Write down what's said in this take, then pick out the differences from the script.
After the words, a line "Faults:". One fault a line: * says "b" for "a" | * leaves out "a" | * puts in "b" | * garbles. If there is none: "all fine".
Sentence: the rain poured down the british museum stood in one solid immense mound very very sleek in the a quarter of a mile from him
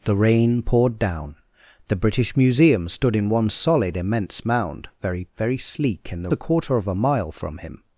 the rain poured down the british museum stood in one solid immense mound very very sleek in the a quarter of a mile from him
Faults:
all fine